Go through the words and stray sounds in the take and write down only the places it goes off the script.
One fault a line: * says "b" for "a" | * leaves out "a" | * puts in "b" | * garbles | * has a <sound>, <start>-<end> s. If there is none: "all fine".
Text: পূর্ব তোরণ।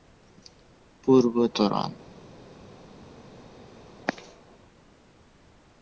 all fine